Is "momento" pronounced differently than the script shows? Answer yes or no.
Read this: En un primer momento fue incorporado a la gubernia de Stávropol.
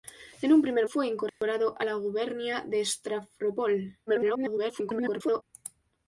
yes